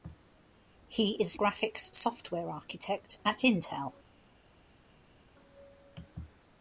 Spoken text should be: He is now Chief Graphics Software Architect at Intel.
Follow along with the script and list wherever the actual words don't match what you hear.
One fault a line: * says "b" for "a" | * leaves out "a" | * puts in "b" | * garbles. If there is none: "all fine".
* leaves out "now Chief"